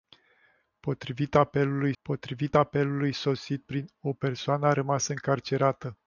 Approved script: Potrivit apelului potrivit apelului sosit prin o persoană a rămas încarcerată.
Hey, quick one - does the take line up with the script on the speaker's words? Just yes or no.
yes